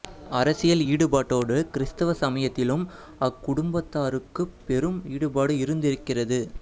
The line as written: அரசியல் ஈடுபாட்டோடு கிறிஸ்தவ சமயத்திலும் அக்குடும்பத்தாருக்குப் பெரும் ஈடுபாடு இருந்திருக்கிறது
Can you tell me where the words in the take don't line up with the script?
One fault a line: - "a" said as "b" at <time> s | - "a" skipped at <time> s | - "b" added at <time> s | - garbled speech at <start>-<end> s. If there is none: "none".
none